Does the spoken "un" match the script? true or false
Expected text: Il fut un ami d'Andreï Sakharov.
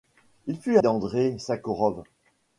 false